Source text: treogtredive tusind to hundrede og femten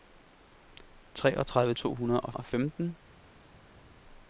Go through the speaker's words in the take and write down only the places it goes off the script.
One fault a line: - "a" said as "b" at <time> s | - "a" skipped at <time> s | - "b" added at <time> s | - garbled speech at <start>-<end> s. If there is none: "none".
- "tusind" skipped at 1.7 s
- "og" added at 2.3 s